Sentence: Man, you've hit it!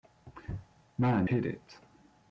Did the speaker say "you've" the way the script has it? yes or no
no